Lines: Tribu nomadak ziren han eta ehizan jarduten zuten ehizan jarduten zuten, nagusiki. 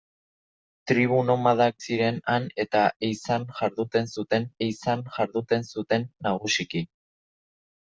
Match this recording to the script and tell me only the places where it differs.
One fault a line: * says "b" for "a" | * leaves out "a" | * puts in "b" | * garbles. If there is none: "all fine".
all fine